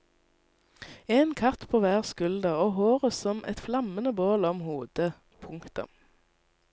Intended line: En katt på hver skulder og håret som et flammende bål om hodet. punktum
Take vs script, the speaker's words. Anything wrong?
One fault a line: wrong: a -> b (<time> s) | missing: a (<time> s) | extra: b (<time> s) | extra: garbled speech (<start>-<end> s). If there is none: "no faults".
no faults